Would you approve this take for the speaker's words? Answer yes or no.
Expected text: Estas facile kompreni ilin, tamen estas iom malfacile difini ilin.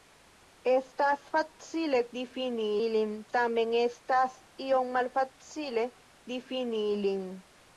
no